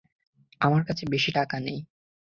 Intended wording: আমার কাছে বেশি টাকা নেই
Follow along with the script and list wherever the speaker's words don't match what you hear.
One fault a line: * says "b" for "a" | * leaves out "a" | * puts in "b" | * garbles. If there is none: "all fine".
all fine